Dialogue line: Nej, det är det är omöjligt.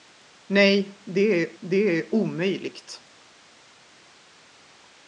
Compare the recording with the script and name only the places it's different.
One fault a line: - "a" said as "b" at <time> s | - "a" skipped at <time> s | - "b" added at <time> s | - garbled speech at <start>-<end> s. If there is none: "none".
none